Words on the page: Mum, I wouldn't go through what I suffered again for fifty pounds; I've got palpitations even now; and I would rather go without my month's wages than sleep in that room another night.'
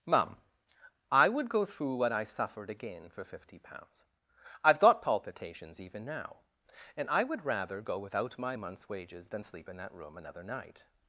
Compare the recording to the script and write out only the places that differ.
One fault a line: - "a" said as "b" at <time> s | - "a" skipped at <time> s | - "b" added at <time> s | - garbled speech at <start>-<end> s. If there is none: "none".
- "wouldn't" said as "would" at 1.3 s